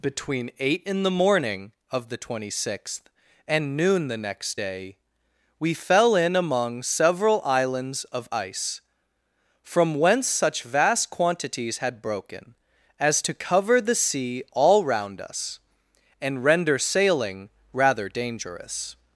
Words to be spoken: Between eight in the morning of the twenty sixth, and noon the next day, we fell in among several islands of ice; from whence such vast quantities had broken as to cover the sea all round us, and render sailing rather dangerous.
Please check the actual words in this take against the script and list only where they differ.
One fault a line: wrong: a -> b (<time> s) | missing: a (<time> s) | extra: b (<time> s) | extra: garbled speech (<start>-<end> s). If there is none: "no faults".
no faults